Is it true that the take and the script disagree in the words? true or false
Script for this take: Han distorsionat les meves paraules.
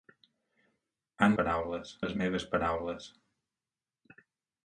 true